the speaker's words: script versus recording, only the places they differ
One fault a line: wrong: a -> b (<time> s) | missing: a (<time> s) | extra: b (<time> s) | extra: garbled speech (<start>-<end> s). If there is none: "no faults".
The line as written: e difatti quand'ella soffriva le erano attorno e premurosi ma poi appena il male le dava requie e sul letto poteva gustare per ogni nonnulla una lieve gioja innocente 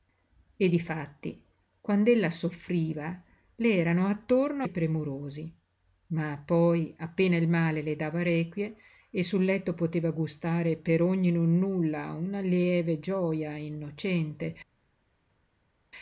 no faults